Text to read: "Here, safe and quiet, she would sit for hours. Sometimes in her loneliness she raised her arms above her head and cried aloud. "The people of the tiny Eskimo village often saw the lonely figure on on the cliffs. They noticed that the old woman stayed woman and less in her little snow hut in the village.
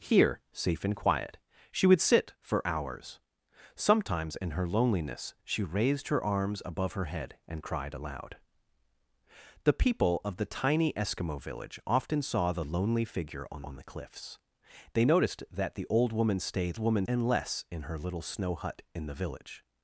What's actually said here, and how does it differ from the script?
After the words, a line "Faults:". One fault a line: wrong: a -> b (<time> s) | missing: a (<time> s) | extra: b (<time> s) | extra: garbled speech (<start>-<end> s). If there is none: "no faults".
"Here, safe and quiet, she would sit for hours. Sometimes in her loneliness she raised her arms above her head and cried aloud. "The people of the tiny Eskimo village often saw the lonely figure on on the cliffs. They noticed that the old woman stayed woman and less in her little snow hut in the village.
Faults:
no faults